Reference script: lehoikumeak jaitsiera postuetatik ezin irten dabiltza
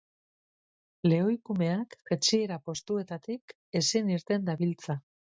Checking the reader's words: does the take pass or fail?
pass